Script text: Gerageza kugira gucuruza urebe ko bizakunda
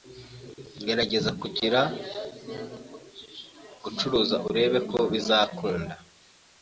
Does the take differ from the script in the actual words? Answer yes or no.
no